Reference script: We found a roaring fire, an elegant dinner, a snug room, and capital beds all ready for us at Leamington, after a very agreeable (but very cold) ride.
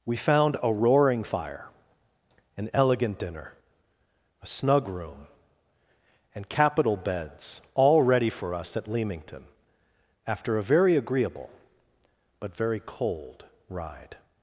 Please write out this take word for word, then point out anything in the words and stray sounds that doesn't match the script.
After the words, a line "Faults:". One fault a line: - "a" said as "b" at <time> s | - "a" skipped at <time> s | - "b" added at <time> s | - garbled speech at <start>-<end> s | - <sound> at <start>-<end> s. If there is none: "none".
We found a roaring fire, an elegant dinner, a snug room, and capital beds all ready for us at Leamington, after a very agreeable (but very cold) ride.
Faults:
none